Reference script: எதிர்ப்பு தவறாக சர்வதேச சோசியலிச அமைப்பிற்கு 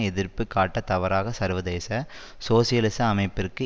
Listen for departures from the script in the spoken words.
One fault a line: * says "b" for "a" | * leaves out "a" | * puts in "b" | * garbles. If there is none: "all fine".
* puts in "காட்ட"